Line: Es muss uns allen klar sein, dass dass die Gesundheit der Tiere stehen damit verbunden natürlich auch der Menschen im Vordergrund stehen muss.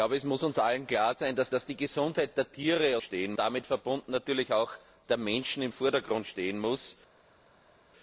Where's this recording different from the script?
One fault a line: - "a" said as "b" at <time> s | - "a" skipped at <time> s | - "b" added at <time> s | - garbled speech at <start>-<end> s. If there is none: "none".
none